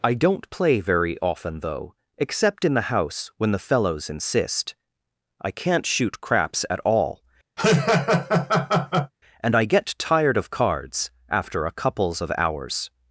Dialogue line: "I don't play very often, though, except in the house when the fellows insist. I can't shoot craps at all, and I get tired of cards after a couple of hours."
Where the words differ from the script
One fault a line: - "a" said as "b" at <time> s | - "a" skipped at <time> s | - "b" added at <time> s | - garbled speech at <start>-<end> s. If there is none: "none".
- "couple" said as "couples" at 11.7 s